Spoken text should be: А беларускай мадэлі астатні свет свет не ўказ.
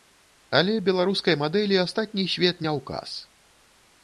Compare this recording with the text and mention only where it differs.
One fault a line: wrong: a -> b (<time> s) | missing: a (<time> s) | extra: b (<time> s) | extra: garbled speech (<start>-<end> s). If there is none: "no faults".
wrong: А -> Але (0.6 s)
missing: свет (2.6 s)